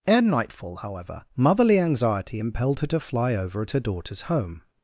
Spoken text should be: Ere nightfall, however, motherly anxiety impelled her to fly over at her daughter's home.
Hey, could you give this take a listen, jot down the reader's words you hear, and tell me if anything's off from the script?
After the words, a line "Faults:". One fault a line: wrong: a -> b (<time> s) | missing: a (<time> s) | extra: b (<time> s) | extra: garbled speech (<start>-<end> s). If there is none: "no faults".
Ere nightfall, however, motherly anxiety impelled her to fly over at her daughter's home.
Faults:
no faults